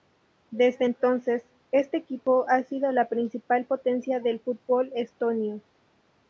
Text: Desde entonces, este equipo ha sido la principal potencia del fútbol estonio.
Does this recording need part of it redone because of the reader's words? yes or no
no